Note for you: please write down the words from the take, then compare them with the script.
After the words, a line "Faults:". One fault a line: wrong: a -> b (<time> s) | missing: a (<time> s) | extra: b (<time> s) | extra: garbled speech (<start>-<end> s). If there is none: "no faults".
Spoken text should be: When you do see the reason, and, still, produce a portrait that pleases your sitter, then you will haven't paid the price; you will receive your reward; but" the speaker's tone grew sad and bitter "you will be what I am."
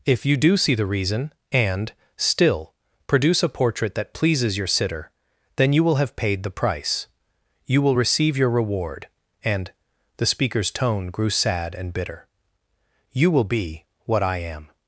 If you do see the reason, and, still, produce a portrait that pleases your sitter, then you will have paid the price; you will receive your reward; and" the speaker's tone grew sad and bitter "you will be what I am."
Faults:
wrong: When -> If (0.1 s)
wrong: haven't -> have (6.0 s)
wrong: but -> and (9.4 s)